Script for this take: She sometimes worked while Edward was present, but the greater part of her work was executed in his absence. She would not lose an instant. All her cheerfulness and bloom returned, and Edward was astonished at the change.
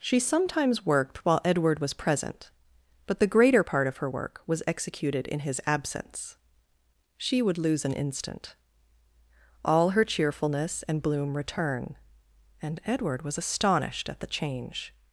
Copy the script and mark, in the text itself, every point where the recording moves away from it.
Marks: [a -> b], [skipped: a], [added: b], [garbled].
She sometimes worked while Edward was present, but the greater part of her work was executed in his absence. She would [skipped: not] lose an instant. All her cheerfulness and bloom [returned, -> return] and Edward was astonished at the change.